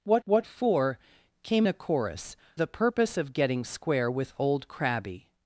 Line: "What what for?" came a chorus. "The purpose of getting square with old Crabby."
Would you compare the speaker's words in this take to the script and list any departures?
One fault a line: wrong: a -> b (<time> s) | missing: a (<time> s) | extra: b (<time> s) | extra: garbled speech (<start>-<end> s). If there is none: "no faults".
no faults